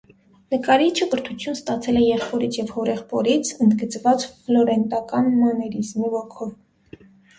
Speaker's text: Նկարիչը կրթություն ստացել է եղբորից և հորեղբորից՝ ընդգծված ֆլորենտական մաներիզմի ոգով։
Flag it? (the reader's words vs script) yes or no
no